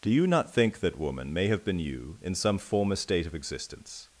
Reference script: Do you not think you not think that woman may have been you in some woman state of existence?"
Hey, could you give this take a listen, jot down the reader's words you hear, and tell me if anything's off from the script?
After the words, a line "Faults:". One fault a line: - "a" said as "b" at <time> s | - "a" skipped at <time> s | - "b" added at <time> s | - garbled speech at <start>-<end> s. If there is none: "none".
Do you not think that woman may have been you in some former state of existence?"
Faults:
- "you not think" skipped at 0.8 s
- "woman" said as "former" at 2.6 s